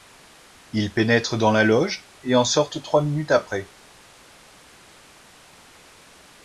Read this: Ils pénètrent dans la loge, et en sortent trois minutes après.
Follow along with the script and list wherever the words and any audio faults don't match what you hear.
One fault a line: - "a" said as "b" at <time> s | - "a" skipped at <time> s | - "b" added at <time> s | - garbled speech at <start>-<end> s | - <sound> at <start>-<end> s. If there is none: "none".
none